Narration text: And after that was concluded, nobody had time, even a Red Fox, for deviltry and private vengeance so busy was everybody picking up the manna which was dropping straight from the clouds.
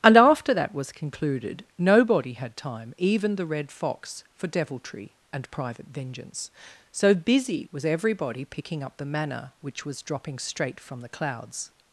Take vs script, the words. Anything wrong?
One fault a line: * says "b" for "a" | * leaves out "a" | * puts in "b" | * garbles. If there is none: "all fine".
* says "the" for "a"